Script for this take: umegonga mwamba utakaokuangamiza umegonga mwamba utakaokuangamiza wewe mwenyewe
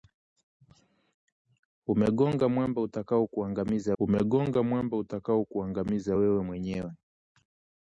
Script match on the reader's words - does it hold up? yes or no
yes